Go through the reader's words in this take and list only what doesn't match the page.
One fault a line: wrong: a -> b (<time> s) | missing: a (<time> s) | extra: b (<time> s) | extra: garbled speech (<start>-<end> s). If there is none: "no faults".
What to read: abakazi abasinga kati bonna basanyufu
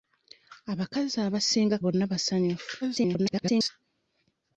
missing: kati (1.8 s)
extra: garbled speech (2.8-3.7 s)